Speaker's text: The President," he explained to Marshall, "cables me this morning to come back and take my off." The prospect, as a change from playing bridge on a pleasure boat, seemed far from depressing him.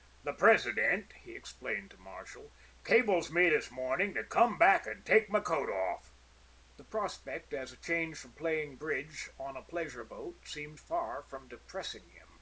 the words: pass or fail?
fail